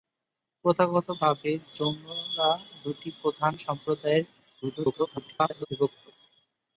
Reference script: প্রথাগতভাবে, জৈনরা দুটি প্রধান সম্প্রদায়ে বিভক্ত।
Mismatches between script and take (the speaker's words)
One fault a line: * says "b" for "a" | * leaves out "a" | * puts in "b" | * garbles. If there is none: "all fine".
* garbles